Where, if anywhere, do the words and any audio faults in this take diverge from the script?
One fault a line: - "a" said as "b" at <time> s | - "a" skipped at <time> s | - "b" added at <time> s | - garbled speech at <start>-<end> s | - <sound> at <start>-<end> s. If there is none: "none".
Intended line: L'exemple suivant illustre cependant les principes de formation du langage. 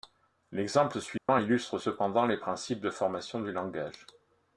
- dropout at 1.2-1.3 s